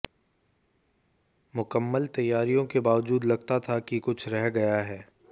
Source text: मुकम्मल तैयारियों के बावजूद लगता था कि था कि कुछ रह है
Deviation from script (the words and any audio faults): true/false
true